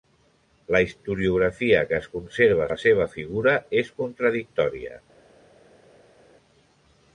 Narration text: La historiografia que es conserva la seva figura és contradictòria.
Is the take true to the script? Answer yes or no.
yes